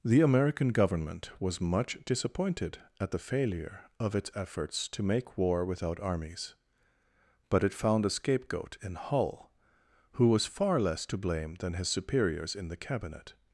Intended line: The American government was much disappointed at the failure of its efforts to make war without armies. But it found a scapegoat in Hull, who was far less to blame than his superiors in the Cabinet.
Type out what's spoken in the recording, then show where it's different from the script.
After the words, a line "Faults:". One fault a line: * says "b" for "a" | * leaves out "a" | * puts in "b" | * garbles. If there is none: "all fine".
The American government was much disappointed at the failure of its efforts to make war without armies. But it found a scapegoat in Hull, who was far less to blame than his superiors in the Cabinet.
Faults:
all fine